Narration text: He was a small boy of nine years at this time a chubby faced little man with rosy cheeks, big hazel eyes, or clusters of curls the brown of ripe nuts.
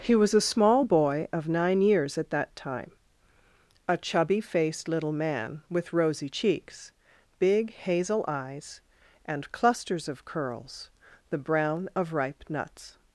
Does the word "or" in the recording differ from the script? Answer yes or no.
yes